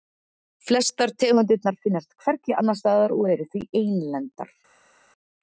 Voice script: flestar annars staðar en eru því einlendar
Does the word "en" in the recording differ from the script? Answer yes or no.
yes